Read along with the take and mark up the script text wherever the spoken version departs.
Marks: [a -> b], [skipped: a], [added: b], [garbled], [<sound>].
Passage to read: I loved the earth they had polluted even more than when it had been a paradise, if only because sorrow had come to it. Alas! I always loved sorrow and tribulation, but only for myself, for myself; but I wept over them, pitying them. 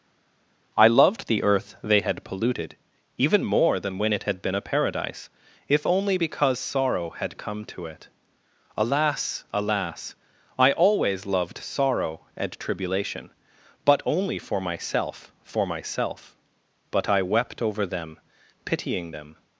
I loved the earth they had polluted even more than when it had been a paradise, if only because sorrow had come to it. Alas! [added: Alas] I always loved sorrow and tribulation, but only for myself, for myself; but I wept over them, pitying them.